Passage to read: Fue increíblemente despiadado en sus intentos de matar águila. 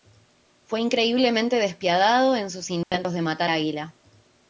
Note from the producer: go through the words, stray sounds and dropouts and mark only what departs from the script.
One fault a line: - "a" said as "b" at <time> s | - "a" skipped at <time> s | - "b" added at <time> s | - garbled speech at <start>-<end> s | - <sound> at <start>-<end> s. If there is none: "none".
- dropout at 2.8-2.9 s